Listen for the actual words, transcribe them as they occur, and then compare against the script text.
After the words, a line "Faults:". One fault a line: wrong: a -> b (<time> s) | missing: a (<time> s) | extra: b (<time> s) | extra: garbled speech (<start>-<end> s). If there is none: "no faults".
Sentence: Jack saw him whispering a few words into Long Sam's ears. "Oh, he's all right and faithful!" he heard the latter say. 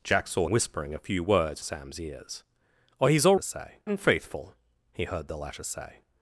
Jack saw whispering a few words Sam's ears. "Oh, he's all say and faithful!" he heard the latter say.
Faults:
missing: him (0.5 s)
missing: into Long (1.6 s)
wrong: right -> say (3.4 s)